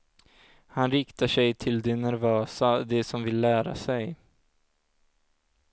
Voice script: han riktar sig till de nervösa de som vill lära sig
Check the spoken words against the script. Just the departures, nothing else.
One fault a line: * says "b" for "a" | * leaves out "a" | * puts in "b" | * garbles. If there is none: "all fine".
all fine